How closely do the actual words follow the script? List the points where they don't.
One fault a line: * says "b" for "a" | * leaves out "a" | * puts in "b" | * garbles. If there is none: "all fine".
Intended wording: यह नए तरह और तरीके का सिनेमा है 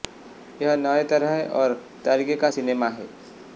all fine